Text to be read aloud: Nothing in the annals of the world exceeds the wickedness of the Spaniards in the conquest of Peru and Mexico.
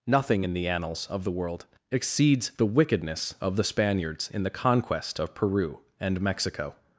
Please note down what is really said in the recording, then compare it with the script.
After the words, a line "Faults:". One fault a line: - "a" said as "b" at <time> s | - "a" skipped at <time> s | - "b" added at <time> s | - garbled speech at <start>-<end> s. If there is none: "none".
Nothing in the annals of the world exceeds the wickedness of the Spaniards in the conquest of Peru and Mexico.
Faults:
none